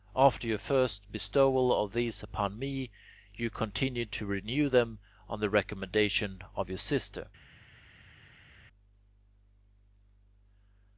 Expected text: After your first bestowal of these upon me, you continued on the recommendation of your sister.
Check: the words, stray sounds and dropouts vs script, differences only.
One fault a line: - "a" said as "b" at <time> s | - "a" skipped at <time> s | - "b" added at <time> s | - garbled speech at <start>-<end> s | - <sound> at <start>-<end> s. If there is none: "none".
- "to renew them" added at 4.1 s